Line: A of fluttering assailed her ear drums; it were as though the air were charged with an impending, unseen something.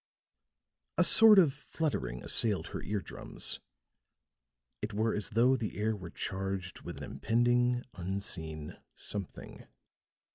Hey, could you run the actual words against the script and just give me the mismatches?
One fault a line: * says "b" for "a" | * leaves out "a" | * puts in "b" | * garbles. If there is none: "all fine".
* puts in "sort"